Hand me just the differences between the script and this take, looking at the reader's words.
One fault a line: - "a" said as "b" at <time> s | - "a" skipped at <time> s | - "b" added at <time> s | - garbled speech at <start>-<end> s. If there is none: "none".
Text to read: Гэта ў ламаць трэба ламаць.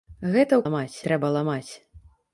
none